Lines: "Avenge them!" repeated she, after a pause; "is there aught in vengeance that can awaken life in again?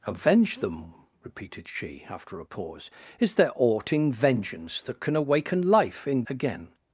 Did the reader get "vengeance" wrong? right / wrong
right